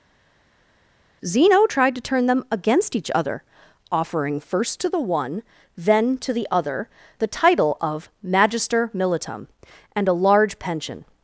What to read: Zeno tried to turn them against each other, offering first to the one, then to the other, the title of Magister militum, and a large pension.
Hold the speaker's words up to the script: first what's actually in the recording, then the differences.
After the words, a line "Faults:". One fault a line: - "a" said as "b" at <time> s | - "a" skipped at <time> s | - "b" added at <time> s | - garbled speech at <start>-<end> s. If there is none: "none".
Zeno tried to turn them against each other, offering first to the one, then to the other, the title of Magister militum, and a large pension.
Faults:
none